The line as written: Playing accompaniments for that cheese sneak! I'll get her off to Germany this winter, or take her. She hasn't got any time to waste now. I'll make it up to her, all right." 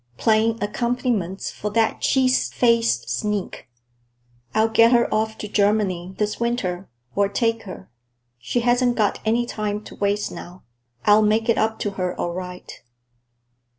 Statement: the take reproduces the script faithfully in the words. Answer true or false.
false